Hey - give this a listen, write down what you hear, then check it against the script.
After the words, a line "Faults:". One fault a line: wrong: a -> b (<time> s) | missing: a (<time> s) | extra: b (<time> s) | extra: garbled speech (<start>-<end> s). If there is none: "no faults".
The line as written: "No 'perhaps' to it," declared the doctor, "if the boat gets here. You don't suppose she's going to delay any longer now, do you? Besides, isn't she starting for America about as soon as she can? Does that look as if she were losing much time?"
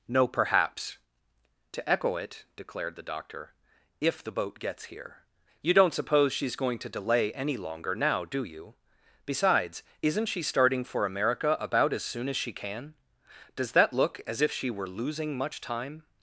"No 'perhaps' to echo it," declared the doctor, "if the boat gets here. You don't suppose she's going to delay any longer now, do you? Besides, isn't she starting for America about as soon as she can? Does that look as if she were losing much time?"
Faults:
extra: echo (1.9 s)